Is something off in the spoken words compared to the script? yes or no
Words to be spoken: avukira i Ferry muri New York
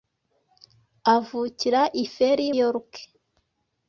yes